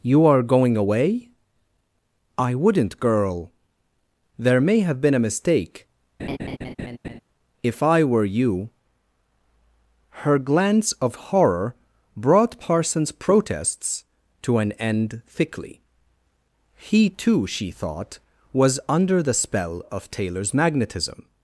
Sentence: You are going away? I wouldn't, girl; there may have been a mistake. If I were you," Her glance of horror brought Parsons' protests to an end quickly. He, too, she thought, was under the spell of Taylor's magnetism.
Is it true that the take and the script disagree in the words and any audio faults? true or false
true